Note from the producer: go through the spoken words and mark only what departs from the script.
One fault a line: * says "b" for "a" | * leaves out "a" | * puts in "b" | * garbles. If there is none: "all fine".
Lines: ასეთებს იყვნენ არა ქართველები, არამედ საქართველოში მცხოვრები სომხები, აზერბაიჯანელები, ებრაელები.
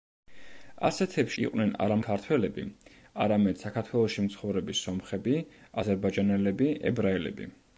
all fine